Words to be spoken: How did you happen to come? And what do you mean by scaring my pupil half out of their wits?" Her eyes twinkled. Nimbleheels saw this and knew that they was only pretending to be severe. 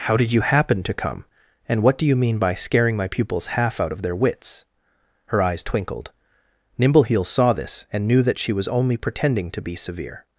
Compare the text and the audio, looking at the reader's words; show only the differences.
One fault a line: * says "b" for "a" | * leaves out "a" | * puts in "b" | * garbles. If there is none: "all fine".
* says "pupils" for "pupil"
* says "she" for "they"